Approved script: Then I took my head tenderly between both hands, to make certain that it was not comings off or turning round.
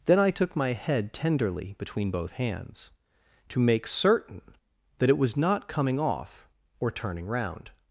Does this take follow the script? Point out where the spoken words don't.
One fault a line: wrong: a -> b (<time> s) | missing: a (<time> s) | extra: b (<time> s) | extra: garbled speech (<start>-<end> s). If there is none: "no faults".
wrong: comings -> coming (5.7 s)